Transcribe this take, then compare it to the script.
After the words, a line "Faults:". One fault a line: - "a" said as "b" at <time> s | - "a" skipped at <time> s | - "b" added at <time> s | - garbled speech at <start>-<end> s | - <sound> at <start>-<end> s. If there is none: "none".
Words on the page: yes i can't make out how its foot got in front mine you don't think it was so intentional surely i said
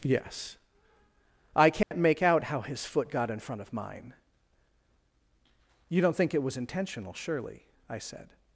yes i can't make out how his foot got in front of mine you don't think it was intentional surely i said
Faults:
- dropout at 1.8-1.9 s
- "its" said as "his" at 2.6 s
- "of" added at 3.6 s
- "so" skipped at 6.6 s